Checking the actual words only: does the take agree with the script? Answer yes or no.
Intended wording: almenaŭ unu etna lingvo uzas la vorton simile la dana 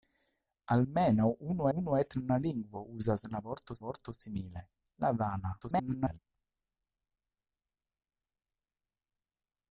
no